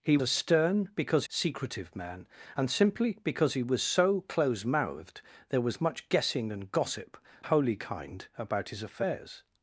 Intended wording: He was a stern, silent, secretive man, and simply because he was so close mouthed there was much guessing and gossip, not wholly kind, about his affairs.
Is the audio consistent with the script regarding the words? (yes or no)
no